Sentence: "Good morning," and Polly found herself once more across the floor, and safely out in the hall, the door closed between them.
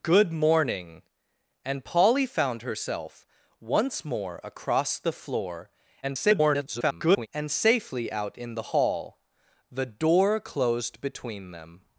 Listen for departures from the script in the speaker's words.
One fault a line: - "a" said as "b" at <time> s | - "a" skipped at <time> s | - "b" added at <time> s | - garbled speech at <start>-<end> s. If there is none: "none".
- garbled speech at 6.0-7.3 s